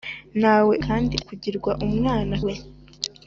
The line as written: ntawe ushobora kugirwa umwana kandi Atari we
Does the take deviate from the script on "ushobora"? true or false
true